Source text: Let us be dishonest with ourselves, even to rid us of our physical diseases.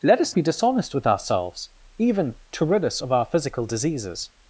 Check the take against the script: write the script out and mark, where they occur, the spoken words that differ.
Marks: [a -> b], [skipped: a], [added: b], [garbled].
Let us be dishonest with ourselves, even to rid us of our physical diseases.